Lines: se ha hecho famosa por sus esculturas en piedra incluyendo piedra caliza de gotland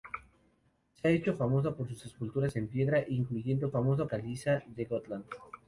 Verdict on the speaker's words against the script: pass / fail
fail